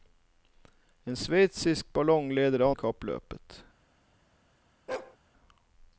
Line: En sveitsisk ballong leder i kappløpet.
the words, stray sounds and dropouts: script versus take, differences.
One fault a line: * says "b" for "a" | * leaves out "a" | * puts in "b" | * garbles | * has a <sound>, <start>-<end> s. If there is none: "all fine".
* has a bark, 4.9-5.2 s